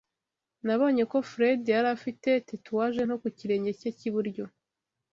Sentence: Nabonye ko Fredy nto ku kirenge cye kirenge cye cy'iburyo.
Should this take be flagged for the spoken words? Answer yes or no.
yes